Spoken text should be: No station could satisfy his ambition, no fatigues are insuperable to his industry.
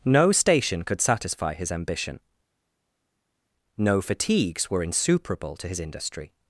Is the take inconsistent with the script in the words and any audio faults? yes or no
yes